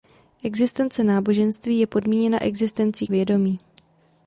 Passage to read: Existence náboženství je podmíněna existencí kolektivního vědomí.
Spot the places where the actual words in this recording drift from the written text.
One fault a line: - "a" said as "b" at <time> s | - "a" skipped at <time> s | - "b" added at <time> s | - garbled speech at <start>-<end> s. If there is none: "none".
- "kolektivního" skipped at 3.1 s